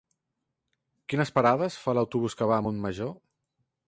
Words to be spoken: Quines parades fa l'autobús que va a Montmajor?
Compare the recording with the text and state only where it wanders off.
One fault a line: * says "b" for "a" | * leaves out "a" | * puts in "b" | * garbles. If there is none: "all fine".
all fine